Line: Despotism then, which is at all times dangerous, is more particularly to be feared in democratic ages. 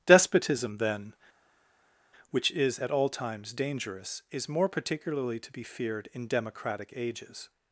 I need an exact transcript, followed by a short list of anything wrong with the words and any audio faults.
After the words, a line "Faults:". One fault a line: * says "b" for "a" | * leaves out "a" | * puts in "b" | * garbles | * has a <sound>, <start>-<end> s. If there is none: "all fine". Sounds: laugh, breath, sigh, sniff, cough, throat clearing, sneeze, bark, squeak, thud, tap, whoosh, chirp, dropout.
Despotism then, which is at all times dangerous, is more particularly to be feared in democratic ages.
Faults:
all fine